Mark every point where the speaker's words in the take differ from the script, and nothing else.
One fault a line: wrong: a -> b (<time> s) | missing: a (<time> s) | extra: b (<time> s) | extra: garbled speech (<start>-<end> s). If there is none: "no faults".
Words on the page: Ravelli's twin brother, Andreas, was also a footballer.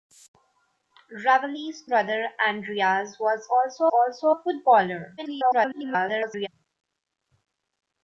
missing: twin (1.8 s)
extra: also (3.9 s)
extra: garbled speech (5.2-6.5 s)